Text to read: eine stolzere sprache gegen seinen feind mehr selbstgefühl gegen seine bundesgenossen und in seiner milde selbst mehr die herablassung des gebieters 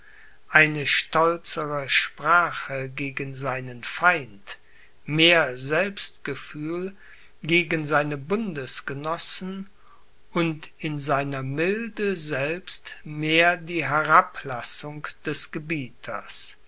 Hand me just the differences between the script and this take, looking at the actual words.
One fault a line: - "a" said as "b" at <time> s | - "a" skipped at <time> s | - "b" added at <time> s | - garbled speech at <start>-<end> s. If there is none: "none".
none